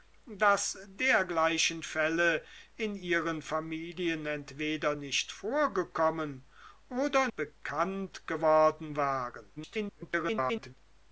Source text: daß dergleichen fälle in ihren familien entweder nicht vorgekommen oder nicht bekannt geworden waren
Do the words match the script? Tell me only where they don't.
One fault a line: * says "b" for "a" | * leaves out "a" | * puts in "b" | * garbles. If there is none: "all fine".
* leaves out "nicht"
* garbles